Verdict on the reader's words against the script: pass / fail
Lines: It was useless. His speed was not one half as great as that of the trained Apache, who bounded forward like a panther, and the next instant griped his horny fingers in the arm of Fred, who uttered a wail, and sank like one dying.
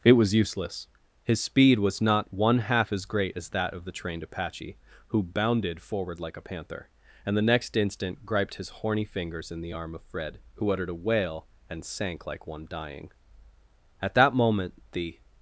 fail